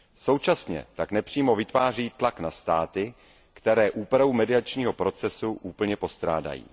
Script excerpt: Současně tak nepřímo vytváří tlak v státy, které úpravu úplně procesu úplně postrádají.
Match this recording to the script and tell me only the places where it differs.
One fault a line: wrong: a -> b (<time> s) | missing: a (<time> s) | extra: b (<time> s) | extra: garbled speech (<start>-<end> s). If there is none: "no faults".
wrong: v -> na (2.4 s)
wrong: úplně -> mediačního (4.3 s)